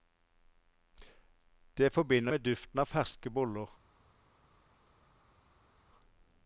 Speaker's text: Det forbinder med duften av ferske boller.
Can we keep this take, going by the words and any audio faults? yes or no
yes